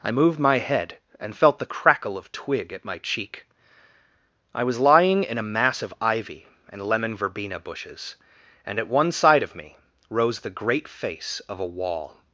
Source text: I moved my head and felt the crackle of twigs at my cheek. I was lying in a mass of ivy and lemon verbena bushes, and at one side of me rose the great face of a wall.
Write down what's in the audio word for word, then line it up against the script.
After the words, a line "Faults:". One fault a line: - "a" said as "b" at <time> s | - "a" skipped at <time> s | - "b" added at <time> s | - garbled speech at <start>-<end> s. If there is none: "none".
I moved my head and felt the crackle of twig at my cheek. I was lying in a mass of ivy and lemon verbena bushes, and at one side of me rose the great face of a wall.
Faults:
- "twigs" said as "twig" at 2.3 s